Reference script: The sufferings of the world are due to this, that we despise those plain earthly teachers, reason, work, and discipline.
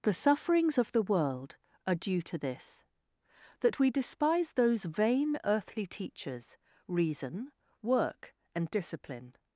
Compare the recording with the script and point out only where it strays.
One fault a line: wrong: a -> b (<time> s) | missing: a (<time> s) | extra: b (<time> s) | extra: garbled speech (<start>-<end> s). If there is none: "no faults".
wrong: plain -> vain (4.8 s)